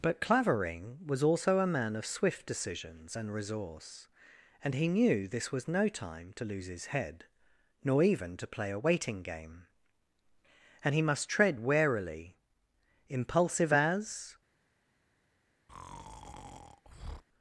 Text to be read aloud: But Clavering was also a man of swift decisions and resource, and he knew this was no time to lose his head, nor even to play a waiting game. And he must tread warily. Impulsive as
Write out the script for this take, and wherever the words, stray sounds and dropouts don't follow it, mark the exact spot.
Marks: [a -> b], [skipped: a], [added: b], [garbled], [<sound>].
But Clavering was also a man of swift decisions and resource, and he knew this was no time to lose his head, nor even to play a waiting game. And he must tread warily. Impulsive as [breath]